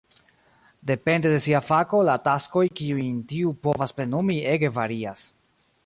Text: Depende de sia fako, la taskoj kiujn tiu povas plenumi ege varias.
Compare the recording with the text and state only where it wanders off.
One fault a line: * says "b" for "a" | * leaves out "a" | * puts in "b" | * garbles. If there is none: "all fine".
all fine